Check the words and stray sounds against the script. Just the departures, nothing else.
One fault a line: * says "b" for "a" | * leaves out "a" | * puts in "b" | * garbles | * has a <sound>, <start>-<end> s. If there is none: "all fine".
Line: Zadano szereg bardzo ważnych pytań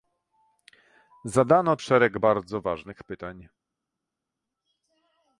all fine